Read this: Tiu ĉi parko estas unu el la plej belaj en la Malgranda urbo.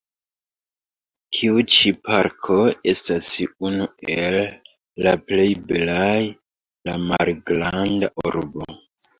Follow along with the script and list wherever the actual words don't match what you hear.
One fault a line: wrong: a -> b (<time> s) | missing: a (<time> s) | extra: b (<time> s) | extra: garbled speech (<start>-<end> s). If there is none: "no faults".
missing: en (6.2 s)